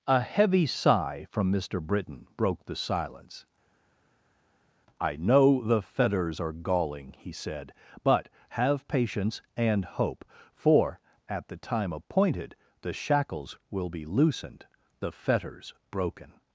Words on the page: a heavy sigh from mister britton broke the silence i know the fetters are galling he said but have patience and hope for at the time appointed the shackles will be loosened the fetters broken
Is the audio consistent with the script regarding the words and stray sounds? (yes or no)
yes